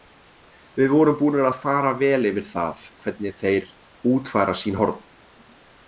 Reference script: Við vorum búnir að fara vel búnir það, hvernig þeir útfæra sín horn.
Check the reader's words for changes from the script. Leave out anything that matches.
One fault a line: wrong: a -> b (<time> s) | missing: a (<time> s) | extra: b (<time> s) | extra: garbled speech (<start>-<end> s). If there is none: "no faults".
wrong: búnir -> yfir (2.3 s)